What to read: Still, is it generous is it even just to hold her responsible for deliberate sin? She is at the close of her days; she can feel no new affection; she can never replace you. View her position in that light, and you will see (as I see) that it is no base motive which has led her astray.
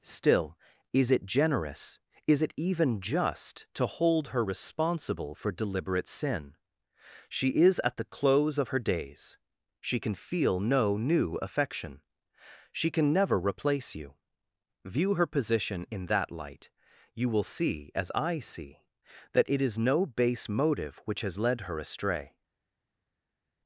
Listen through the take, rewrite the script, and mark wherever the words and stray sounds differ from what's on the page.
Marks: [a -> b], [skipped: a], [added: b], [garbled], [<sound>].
Still, is it generous is it even just to hold her responsible for deliberate sin? She is at the close of her days; she can feel no new affection; she can never replace you. View her position in that light, [skipped: and] you will see (as I see) that it is no base motive which has led her astray.